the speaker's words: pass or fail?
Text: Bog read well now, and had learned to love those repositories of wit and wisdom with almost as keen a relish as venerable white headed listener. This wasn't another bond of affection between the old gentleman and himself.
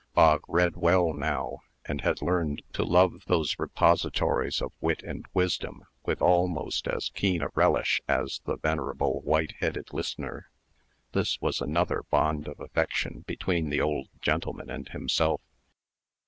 fail